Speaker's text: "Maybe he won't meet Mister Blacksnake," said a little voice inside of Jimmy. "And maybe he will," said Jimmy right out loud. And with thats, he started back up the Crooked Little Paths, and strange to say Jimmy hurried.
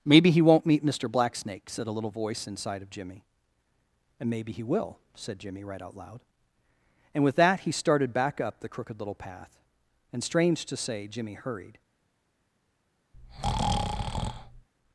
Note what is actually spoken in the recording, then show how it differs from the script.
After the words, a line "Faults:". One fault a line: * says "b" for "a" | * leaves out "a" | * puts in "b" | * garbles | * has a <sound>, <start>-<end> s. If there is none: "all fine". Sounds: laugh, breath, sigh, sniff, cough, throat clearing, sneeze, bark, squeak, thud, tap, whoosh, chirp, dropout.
"Maybe he won't meet Mister Blacksnake," said a little voice inside of Jimmy. "And maybe he will," said Jimmy right out loud. And with that, he started back up the Crooked Little Path, and strange to say Jimmy hurried.
Faults:
* says "that" for "thats"
* says "Path" for "Paths"
* has a breath, 13.1-14.7 s